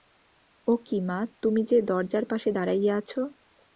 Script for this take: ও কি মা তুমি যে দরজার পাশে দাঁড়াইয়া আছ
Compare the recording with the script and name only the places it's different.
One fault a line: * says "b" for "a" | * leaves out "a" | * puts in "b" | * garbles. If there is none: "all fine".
all fine